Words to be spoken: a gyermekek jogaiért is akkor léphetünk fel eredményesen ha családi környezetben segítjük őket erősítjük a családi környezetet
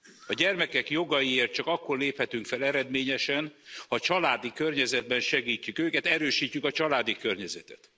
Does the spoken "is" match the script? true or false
false